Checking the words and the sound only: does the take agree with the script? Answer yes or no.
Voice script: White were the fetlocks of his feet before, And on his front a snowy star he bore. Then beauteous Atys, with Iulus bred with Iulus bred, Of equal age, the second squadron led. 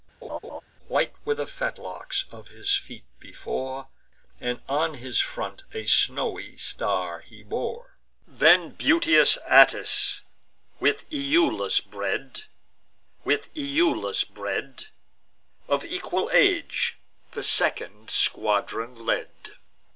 no